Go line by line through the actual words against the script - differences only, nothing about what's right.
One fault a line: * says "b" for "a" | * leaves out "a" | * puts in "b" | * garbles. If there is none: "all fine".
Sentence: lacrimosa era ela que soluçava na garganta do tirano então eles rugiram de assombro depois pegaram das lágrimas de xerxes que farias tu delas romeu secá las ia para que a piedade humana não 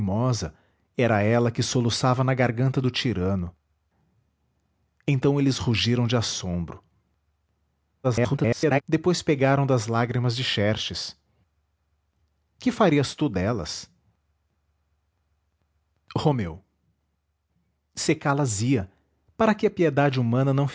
* garbles